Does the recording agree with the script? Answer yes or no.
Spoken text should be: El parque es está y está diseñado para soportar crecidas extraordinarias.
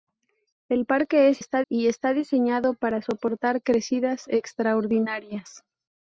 yes